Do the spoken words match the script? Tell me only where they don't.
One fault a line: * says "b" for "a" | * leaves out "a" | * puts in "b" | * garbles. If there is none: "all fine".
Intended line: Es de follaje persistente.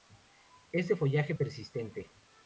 all fine